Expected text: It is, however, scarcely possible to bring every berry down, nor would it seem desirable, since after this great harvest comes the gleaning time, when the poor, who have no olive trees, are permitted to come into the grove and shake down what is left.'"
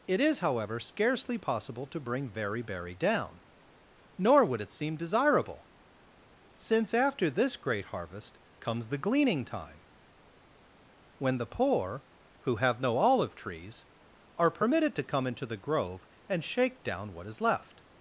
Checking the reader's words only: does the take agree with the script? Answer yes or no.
no